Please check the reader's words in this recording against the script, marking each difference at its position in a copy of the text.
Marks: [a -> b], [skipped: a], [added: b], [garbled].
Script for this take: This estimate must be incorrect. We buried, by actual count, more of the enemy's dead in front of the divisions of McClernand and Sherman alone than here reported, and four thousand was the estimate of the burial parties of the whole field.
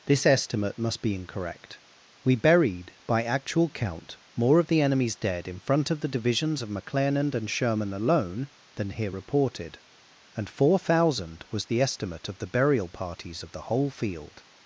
This estimate must be incorrect. We buried, by actual count, more of the enemy's dead in front of the divisions of McClernand and Sherman alone than here reported, and four thousand was the estimate of the burial parties of the whole field.